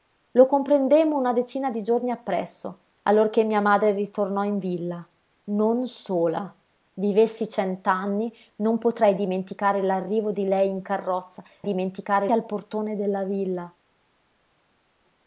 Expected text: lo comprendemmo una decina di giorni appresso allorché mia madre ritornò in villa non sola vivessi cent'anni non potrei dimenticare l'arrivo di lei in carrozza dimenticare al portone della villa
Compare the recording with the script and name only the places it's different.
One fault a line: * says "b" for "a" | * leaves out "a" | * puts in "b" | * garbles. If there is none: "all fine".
all fine